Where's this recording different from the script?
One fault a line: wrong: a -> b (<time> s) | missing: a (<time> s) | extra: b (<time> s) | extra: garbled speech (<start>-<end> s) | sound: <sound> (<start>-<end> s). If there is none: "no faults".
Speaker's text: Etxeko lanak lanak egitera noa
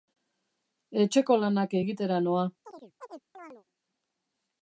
missing: lanak (1.8 s)
sound: chirp (2.6-3.6 s)